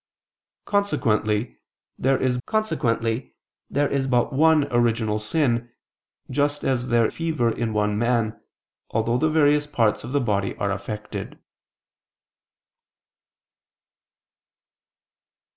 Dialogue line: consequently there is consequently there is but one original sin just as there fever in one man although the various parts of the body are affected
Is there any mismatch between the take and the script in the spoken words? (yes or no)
no